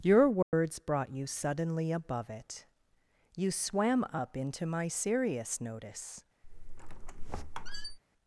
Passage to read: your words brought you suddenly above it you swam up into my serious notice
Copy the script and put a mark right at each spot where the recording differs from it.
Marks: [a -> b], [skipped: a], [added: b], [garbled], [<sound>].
your words [dropout] brought you suddenly above it you swam up into my serious notice [squeak]